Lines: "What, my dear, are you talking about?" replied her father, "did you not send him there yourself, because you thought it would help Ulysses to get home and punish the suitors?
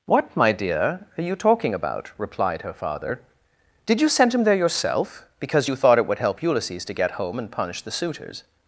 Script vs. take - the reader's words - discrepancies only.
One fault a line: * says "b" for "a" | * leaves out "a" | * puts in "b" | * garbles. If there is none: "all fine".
* leaves out "not"